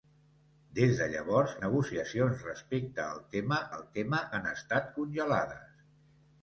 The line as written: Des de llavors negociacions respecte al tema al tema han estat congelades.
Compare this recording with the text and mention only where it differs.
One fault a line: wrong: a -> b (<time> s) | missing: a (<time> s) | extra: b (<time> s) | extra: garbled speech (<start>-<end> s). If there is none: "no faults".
no faults